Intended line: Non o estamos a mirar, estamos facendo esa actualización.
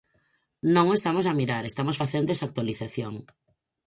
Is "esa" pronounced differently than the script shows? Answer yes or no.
no